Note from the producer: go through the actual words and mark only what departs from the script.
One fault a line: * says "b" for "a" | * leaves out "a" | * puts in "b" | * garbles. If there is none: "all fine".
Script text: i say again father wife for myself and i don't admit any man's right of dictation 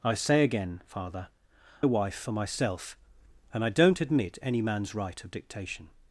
all fine